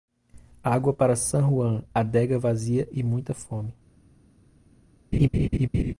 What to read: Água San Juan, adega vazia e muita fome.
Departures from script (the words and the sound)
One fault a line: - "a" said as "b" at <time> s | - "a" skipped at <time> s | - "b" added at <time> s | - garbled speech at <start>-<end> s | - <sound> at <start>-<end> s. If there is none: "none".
- "para" added at 0.9 s
- laugh at 5.1-5.9 s